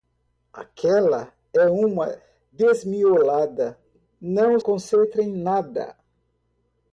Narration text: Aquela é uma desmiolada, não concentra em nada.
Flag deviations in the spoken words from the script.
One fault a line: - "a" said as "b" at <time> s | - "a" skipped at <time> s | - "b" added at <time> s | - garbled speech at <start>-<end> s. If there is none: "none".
none